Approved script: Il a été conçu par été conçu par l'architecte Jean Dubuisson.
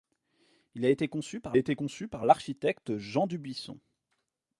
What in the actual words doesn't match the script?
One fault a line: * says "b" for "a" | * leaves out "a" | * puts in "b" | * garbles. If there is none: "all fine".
all fine